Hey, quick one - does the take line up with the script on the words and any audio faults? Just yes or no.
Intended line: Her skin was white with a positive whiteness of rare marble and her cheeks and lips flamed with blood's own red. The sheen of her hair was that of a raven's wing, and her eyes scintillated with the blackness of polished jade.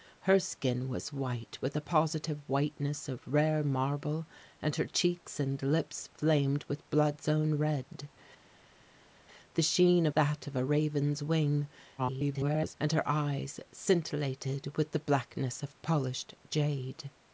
no